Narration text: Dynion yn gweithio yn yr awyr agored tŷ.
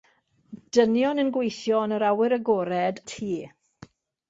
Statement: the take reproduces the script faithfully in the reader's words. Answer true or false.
true